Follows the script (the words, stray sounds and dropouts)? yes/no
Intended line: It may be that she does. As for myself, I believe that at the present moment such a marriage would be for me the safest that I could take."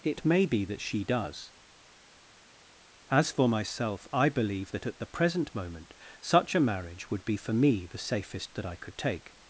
yes